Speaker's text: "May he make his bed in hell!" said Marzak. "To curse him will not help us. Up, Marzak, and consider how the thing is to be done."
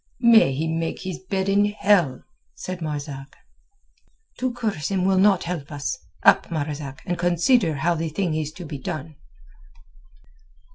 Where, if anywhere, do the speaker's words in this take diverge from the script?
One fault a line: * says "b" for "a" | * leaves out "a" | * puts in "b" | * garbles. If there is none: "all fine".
all fine